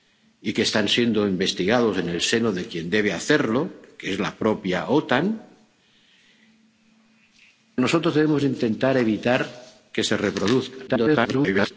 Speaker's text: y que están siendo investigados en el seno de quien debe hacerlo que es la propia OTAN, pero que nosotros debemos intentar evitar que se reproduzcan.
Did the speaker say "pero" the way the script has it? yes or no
no